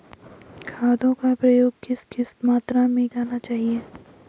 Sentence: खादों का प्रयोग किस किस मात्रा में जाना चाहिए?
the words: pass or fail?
pass